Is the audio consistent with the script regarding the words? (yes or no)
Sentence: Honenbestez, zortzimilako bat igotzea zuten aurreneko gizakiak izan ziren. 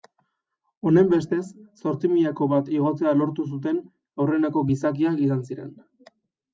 no